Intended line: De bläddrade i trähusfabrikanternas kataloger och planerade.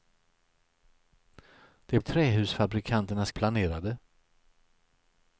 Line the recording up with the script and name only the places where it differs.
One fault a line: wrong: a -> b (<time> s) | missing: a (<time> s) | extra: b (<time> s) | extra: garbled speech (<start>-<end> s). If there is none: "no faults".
missing: bläddrade (2.0 s)
missing: kataloger (3.3 s)